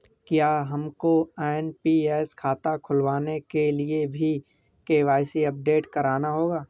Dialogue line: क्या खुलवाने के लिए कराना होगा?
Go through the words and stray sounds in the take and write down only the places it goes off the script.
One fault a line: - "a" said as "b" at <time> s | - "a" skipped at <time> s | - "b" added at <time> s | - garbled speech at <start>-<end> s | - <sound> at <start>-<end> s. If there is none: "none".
- "हमको एन.पी.एस खाता" added at 0.7 s
- "भी के.वाई.सी अपडेट" added at 4.1 s